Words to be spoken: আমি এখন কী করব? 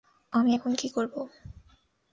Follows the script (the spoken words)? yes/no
yes